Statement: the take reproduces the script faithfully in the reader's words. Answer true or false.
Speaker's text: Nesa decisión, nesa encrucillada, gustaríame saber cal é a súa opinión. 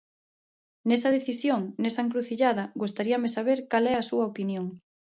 true